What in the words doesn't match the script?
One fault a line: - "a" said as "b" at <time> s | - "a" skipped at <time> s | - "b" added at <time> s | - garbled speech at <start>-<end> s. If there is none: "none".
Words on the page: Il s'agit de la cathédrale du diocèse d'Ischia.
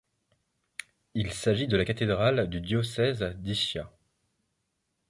none